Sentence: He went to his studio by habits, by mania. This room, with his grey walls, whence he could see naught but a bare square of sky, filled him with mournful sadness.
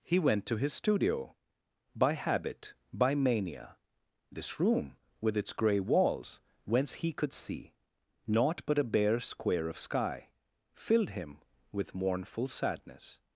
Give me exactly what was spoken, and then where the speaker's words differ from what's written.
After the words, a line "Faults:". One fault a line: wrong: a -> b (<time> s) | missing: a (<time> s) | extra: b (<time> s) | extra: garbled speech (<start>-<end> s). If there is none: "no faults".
He went to his studio by habit, by mania. This room, with its grey walls, whence he could see naught but a bare square of sky, filled him with mournful sadness.
Faults:
wrong: habits -> habit (2.1 s)
wrong: his -> its (5.4 s)